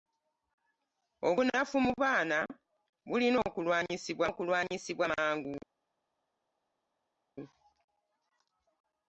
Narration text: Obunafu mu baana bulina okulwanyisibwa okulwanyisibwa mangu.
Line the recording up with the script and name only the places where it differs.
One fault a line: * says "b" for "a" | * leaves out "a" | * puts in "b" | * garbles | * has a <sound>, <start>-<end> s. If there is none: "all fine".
all fine